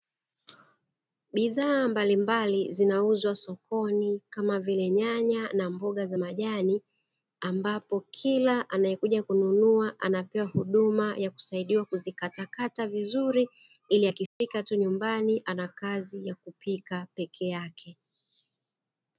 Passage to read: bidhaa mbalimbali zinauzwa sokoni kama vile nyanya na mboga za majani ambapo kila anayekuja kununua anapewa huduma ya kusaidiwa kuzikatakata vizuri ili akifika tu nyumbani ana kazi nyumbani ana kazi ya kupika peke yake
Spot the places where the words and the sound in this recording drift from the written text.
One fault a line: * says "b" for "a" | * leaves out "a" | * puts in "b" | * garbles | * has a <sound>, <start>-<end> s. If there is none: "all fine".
* has a dropout, 14.3-14.4 s
* leaves out "nyumbani ana kazi"